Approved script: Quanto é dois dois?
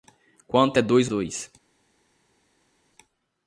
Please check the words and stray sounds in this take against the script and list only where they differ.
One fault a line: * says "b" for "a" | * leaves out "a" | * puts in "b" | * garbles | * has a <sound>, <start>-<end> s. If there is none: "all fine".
all fine